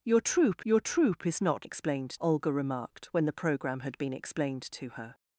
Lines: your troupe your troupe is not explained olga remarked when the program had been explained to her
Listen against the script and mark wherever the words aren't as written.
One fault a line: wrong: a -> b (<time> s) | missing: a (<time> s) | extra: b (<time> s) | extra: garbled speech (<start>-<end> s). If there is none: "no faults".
no faults